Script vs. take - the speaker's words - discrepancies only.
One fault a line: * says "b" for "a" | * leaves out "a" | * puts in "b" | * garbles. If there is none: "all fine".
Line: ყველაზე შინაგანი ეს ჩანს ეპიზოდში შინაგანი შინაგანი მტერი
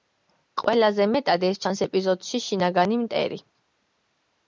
* says "მეტად" for "შინაგანი"
* leaves out "შინაგანი"